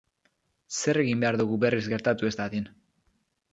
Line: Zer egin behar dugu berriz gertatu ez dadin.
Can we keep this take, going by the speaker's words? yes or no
yes